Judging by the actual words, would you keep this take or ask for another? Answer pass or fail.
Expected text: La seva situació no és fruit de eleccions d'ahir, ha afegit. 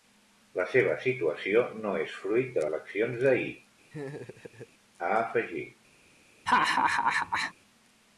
pass